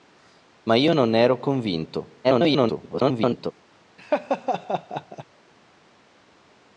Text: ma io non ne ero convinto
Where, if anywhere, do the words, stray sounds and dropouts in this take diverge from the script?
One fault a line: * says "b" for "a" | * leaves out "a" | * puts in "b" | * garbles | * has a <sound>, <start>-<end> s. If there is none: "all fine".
* garbles
* has a laugh, 4.0-5.2 s